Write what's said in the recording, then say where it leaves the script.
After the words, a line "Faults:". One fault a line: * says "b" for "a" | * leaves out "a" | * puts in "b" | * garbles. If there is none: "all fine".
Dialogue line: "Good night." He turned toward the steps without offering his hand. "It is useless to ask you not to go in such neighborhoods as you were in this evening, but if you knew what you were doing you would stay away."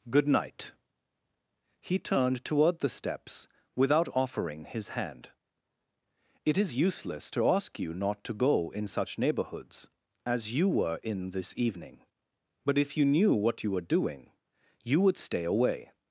"Good night." He turned toward the steps without offering his hand. "It is useless to ask you not to go in such neighborhoods as you were in this evening, but if you knew what you were doing you would stay away."
Faults:
all fine